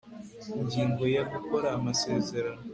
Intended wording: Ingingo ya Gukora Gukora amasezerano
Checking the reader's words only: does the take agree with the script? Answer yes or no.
no